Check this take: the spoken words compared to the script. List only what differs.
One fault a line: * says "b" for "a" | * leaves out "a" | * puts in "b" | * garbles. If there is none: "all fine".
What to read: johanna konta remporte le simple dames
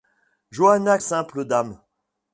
* leaves out "konta remporte le"